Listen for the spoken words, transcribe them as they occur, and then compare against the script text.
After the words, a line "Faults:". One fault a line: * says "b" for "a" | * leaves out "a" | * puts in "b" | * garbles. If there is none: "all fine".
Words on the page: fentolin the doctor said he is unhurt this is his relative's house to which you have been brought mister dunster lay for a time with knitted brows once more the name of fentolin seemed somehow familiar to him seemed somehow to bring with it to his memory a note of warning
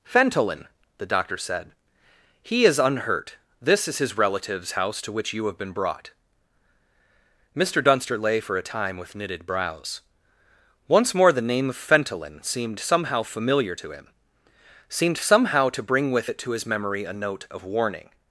fentolin the doctor said he is unhurt this is his relative's house to which you have been brought mister dunster lay for a time with knitted brows once more the name of fentolin seemed somehow familiar to him seemed somehow to bring with it to his memory a note of warning
Faults:
all fine